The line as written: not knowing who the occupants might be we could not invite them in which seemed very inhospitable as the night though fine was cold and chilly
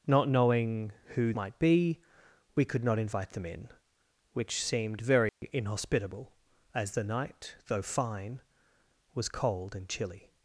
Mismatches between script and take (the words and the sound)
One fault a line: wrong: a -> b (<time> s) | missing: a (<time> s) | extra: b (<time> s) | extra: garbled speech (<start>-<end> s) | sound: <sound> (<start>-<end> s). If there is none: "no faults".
missing: the occupants (1.3 s)
sound: dropout (5.3-5.4 s)